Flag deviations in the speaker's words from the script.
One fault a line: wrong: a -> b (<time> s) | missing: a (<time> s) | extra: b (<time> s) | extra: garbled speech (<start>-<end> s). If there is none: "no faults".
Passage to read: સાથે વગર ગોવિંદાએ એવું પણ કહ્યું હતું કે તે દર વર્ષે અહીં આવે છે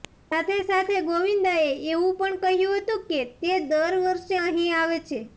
wrong: વગર -> સાથે (0.6 s)